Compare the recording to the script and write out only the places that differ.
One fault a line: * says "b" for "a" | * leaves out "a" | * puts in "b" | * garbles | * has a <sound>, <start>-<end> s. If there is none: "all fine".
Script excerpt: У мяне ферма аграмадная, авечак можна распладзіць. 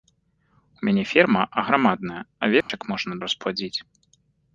* has a dropout, 2.6-2.7 s